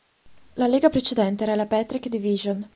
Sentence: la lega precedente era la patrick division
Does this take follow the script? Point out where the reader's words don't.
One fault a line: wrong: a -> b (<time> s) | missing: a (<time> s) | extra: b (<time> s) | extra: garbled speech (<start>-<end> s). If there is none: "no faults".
no faults